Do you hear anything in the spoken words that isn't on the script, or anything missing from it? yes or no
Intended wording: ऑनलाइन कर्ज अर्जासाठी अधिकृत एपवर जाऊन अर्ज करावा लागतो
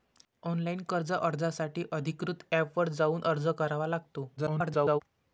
yes